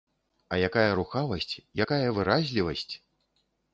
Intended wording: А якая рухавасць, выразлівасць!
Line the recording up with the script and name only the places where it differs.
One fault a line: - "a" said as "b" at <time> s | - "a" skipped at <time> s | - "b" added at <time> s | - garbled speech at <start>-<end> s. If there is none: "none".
- "якая" added at 1.9 s